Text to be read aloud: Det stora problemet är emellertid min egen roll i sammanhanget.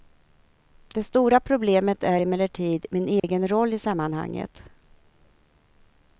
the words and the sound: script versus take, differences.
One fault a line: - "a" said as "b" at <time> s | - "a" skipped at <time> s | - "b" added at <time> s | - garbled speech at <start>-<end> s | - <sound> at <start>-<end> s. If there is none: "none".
- dropout at 3.2-3.2 s